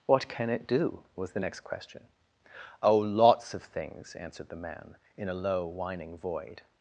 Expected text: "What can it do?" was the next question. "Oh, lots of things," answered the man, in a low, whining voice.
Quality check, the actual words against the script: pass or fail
fail